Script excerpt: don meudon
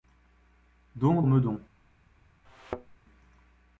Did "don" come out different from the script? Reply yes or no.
no